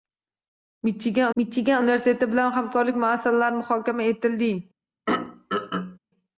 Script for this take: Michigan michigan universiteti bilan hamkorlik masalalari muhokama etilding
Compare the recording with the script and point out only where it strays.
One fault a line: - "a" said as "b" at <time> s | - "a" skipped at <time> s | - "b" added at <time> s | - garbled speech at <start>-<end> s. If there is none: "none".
none